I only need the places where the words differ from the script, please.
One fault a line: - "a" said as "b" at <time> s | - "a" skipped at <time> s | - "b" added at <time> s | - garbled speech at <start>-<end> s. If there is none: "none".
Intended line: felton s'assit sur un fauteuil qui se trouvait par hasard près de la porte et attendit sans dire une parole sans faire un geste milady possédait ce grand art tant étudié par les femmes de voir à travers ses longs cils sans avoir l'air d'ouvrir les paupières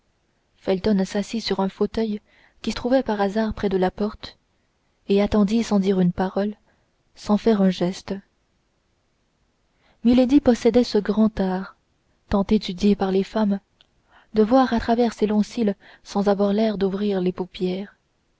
- "se" skipped at 2.7 s